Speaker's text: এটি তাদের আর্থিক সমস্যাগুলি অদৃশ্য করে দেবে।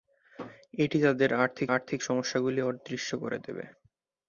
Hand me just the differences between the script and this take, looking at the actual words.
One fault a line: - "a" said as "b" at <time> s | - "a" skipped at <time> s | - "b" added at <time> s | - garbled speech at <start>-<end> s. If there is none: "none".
- "আর্থিক" added at 1.7 s